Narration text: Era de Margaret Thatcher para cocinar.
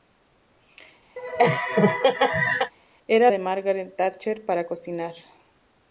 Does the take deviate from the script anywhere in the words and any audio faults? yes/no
yes